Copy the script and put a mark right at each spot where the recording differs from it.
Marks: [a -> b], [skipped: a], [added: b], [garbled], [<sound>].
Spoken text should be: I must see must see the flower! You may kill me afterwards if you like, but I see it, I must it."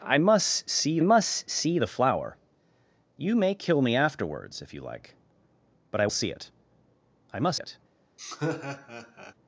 I must see must see the flower! You may kill me afterwards if you like, but I see it, I must it." [laugh]